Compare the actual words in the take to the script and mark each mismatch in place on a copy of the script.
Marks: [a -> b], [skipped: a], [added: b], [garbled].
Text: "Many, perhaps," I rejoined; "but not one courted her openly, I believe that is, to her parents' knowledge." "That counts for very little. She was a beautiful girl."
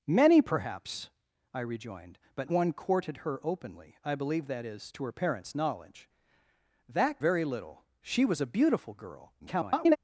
"Many, perhaps," I rejoined; "but [skipped: not] one courted her openly, I believe that is, to her parents' knowledge." "That [skipped: counts for] very little. She was a beautiful girl." [garbled]